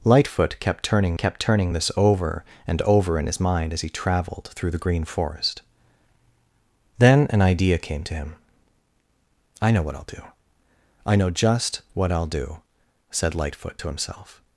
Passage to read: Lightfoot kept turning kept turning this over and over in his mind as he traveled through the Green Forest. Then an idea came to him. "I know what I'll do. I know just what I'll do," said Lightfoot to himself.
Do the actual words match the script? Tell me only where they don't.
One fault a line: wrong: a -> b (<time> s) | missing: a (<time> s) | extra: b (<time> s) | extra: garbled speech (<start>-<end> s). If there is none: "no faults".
no faults